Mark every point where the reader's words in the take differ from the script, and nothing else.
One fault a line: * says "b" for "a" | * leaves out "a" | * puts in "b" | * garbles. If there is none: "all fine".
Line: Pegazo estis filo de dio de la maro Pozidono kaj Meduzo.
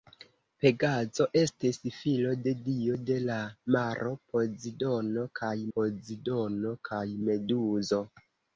* puts in "Pozidono kaj"